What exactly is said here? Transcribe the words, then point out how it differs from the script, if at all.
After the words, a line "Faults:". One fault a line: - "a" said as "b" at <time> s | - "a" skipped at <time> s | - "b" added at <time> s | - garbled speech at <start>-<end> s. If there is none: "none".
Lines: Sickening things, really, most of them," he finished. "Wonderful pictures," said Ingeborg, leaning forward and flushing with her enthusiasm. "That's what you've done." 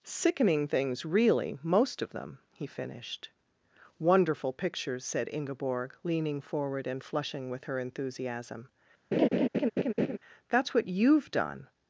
Sickening things, really, most of them," he finished. "Wonderful pictures," said Ingeborg, leaning forward and flushing with her enthusiasm. "That's what you've done."
Faults:
none